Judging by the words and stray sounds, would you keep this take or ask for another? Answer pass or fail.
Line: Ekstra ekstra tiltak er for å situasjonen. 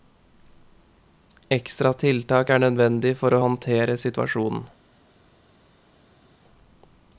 fail